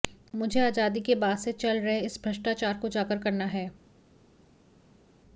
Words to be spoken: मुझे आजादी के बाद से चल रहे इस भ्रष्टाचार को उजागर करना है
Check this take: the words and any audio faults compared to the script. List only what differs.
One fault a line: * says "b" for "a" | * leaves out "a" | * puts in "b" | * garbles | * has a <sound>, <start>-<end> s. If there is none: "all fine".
all fine